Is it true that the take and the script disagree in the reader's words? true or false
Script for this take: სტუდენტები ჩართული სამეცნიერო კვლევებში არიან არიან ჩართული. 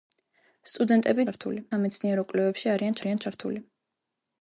false